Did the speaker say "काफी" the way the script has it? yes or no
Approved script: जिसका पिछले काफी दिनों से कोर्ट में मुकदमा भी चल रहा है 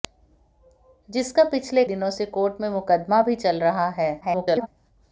no